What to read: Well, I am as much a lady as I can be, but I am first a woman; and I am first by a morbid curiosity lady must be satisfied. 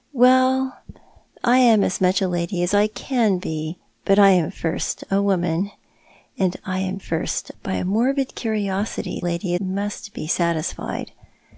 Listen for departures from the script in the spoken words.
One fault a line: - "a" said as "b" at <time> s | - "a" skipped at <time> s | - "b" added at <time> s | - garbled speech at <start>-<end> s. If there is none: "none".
none